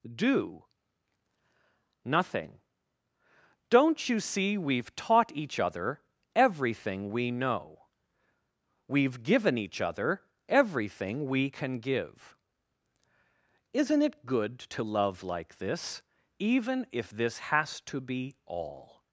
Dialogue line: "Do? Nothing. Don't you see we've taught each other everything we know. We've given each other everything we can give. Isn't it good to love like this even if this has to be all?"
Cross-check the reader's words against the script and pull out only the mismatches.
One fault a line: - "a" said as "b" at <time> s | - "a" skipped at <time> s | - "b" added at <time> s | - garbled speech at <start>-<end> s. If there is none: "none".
none